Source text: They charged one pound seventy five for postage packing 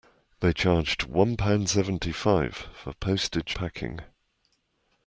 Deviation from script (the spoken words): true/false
false